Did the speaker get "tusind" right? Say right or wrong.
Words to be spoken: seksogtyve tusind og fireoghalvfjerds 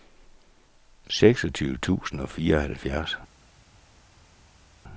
right